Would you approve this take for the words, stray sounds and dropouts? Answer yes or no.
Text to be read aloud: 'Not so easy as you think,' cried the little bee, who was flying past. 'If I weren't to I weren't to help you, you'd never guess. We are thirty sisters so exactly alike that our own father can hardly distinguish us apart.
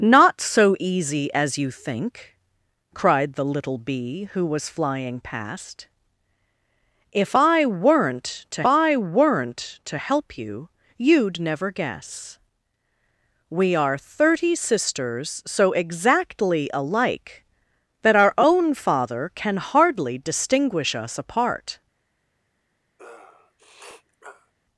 no